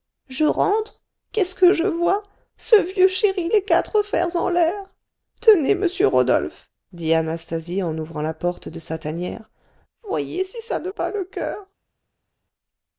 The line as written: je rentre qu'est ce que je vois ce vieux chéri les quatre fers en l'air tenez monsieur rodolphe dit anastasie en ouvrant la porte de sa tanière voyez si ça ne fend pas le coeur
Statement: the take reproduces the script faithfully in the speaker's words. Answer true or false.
false